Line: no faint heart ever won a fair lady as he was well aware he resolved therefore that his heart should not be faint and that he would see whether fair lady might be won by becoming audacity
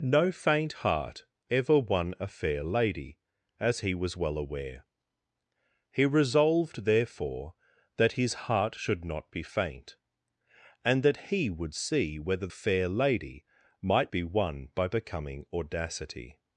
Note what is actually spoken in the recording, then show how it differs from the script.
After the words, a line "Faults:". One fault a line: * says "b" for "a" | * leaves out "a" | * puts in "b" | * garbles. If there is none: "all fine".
no faint heart ever won a fair lady as he was well aware he resolved therefore that his heart should not be faint and that he would see whether fair lady might be won by becoming audacity
Faults:
all fine